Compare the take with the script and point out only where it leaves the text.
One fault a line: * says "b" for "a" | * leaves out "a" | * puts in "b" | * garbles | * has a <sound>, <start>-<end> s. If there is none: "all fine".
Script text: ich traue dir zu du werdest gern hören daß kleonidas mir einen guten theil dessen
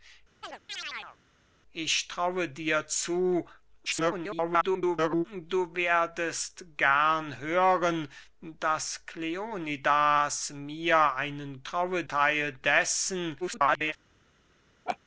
* has a chirp, 0.4-1.2 s
* garbles
* says "traue" for "guten"
* garbles
* has a laugh, 14.9-15.0 s